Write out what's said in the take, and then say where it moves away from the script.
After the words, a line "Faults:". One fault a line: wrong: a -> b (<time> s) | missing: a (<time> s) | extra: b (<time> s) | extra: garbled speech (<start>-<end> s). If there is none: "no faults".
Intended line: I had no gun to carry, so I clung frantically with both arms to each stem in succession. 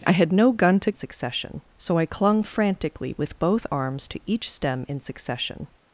I had no gun to succession, so I clung frantically with both arms to each stem in succession.
Faults:
wrong: carry -> succession (0.9 s)